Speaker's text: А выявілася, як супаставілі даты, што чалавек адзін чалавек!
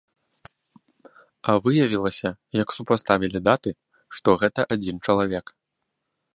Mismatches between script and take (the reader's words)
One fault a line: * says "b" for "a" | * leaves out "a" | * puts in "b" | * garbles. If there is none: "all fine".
* says "гэта" for "чалавек"